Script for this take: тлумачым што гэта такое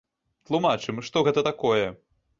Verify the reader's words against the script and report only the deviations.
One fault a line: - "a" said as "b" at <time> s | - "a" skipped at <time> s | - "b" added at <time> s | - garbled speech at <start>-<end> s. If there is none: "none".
none